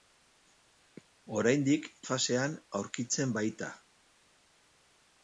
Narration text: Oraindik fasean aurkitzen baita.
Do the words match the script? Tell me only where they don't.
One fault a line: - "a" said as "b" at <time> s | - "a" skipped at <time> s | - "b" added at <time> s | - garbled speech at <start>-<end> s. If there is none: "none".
none